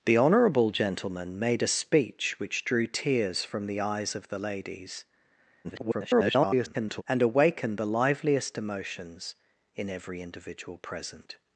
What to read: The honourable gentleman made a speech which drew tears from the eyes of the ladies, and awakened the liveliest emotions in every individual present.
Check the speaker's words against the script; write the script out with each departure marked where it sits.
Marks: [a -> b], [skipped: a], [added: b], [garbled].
The honourable gentleman made a speech which drew tears from the eyes of the ladies, [garbled] and awakened the liveliest emotions in every individual present.